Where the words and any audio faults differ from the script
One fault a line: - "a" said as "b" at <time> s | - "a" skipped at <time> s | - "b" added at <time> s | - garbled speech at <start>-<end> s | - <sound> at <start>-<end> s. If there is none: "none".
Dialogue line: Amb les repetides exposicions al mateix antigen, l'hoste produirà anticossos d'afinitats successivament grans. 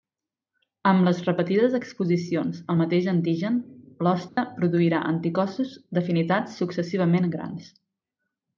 - dropout at 4.3-4.4 s